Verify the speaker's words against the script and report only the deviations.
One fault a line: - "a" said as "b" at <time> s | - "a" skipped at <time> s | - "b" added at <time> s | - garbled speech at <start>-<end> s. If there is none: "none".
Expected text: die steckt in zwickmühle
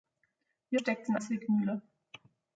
none